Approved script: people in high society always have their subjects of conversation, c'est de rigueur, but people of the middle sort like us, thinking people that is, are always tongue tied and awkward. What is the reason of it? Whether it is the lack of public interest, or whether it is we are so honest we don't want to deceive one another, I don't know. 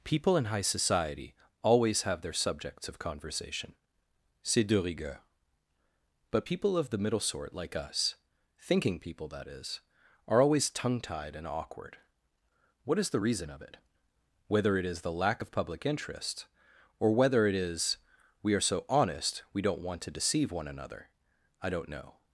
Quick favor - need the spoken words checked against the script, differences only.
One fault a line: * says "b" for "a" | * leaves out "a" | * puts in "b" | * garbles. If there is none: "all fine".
all fine